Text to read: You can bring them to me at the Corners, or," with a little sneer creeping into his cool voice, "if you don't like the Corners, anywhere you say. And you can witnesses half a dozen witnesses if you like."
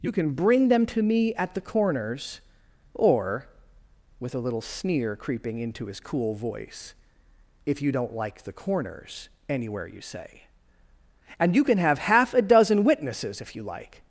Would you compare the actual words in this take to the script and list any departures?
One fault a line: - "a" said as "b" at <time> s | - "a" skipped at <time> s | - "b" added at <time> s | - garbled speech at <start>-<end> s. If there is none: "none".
- "witnesses" said as "have" at 11.8 s